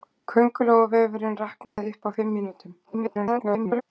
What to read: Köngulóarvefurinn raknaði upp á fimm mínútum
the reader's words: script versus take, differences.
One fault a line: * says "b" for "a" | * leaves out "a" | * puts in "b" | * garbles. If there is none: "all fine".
* garbles